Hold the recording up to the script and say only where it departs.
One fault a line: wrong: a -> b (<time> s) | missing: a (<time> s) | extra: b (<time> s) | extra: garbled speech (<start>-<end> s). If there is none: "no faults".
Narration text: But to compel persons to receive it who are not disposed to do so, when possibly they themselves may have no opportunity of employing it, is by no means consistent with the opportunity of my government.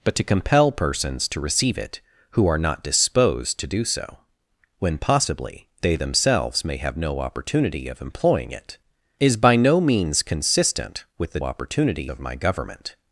no faults